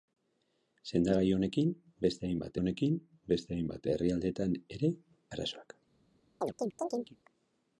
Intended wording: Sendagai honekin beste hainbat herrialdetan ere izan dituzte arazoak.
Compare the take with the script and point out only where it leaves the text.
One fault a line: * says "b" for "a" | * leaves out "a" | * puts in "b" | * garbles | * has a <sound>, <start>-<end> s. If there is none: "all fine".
* puts in "honekin beste hainbat"
* leaves out "izan dituzte"
* has a chirp, 6.4-7.2 s